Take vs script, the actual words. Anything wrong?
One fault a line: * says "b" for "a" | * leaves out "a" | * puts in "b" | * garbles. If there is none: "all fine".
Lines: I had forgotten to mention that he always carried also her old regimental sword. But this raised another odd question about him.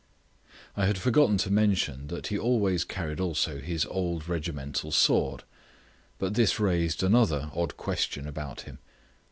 * says "his" for "her"